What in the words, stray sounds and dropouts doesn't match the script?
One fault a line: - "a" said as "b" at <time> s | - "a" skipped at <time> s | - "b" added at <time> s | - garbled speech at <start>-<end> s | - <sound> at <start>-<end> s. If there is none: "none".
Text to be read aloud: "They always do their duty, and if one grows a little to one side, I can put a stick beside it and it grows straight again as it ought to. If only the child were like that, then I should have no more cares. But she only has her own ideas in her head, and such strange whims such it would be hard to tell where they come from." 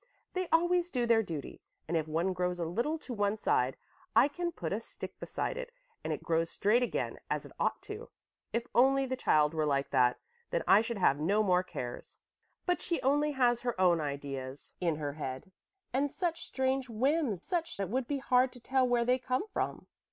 none